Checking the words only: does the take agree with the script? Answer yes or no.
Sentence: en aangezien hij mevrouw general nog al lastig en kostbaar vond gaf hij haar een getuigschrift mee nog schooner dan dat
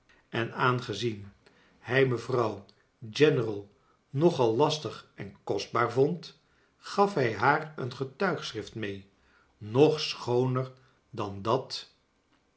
yes